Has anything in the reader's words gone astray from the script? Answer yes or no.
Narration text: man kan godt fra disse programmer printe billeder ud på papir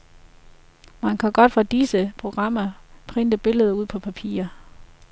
no